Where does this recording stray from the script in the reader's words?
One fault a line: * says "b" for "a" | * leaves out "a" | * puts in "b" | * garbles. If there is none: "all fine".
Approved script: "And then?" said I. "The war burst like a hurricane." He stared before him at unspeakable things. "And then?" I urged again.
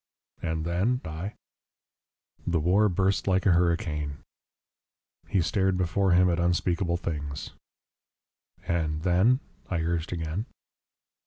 * leaves out "said"